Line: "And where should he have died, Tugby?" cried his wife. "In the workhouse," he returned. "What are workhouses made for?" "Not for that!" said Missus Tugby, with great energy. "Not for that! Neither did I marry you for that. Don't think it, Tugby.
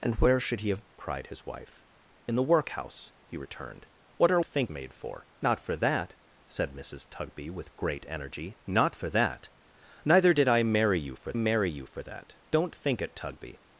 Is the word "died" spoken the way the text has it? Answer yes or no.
no